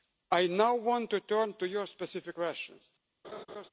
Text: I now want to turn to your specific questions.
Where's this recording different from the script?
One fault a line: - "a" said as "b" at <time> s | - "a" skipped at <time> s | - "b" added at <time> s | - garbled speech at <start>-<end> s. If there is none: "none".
none